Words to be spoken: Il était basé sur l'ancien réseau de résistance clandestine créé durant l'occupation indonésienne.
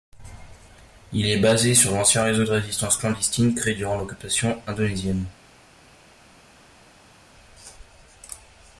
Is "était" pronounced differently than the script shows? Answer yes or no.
yes